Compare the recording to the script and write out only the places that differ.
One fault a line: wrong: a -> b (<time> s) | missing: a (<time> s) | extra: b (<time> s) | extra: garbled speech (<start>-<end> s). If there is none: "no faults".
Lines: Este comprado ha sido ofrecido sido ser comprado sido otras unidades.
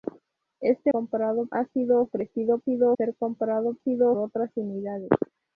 no faults